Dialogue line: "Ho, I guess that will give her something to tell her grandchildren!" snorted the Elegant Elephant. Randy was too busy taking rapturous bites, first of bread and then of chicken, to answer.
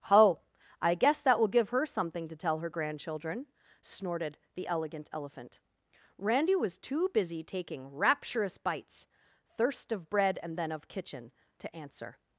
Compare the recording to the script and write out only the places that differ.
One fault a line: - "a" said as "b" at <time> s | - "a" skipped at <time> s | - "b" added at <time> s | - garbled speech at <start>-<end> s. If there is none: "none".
- "first" said as "thirst" at 9.6 s
- "chicken" said as "kitchen" at 10.9 s